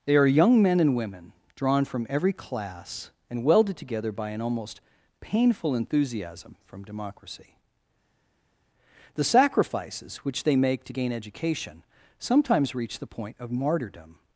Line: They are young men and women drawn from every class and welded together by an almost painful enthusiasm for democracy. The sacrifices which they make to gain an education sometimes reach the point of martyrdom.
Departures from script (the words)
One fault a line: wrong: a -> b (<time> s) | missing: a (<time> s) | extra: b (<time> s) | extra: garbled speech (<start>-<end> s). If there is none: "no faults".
wrong: for -> from (6.7 s)
missing: an (11.1 s)